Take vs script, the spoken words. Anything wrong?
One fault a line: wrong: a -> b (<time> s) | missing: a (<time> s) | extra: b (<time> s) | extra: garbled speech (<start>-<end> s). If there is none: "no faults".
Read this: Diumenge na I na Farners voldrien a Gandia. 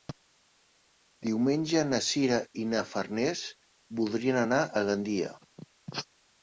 extra: Sira (2.1 s)
extra: anar (4.5 s)